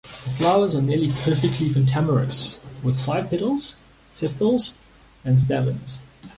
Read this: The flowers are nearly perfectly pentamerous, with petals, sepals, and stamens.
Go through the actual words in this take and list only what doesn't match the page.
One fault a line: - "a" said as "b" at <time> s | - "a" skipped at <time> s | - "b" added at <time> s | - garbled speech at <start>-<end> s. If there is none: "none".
- "five" added at 3.0 s